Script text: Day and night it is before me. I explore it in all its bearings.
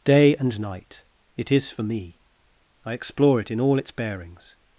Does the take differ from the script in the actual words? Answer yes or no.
yes